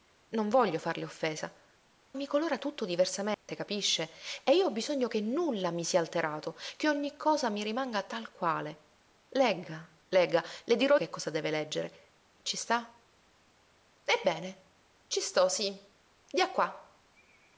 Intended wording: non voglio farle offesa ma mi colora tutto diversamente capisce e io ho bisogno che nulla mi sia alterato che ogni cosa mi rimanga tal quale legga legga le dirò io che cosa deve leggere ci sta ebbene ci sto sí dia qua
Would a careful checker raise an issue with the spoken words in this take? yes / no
yes